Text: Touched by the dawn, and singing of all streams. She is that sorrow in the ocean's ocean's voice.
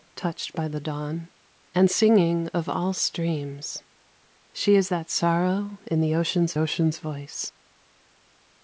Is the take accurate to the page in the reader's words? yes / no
yes